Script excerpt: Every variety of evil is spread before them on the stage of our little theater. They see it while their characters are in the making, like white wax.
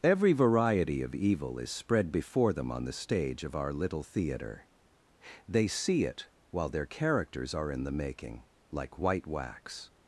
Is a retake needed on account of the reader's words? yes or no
no